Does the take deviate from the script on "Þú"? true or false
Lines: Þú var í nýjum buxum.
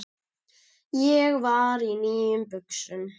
true